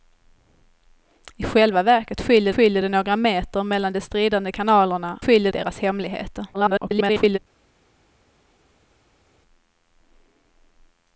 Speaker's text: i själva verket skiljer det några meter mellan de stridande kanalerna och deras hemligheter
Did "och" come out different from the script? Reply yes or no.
yes